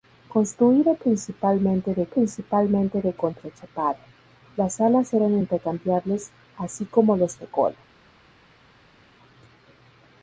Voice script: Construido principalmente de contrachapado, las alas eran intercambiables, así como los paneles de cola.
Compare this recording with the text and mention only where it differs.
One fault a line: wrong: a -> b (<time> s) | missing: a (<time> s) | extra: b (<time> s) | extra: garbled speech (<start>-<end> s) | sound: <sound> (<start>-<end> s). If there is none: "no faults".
extra: principalmente de (2.1 s)
missing: paneles (7.3 s)